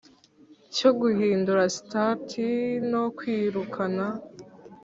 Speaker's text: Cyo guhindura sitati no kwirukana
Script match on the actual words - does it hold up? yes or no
yes